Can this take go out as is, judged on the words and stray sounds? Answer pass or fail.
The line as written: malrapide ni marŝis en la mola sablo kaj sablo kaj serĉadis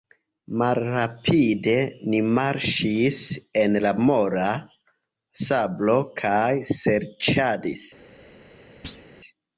fail